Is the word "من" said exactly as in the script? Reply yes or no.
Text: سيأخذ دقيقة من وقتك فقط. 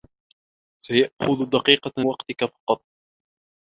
no